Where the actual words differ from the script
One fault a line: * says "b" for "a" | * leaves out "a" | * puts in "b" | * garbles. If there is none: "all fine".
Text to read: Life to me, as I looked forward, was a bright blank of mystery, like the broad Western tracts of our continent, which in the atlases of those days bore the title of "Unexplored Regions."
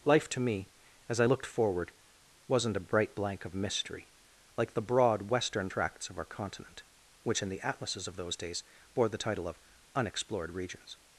* says "wasn't" for "was"